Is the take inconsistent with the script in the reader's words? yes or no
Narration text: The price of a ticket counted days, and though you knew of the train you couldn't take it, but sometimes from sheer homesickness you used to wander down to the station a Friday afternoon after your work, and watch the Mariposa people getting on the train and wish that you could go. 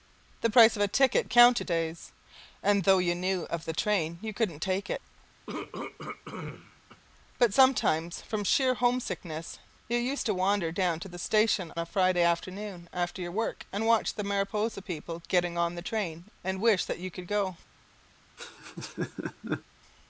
no